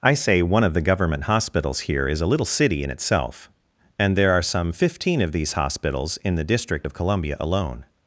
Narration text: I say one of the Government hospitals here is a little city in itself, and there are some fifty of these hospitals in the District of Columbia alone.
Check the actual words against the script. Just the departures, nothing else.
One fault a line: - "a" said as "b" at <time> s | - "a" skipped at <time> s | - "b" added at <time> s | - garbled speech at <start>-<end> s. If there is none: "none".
- "fifty" said as "fifteen" at 4.7 s